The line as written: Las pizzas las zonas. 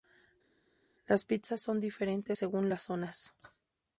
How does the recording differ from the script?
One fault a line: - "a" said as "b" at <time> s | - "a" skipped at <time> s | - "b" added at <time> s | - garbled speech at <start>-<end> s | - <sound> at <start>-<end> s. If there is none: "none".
- "son diferentes según" added at 1.6 s